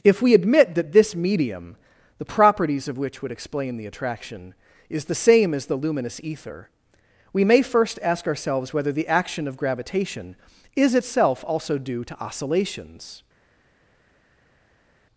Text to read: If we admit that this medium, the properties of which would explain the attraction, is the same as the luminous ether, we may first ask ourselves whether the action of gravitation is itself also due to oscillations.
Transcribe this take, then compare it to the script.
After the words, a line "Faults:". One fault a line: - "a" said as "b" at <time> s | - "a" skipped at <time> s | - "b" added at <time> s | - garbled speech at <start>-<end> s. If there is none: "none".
If we admit that this medium, the properties of which would explain the attraction, is the same as the luminous ether, we may first ask ourselves whether the action of gravitation is itself also due to oscillations.
Faults:
none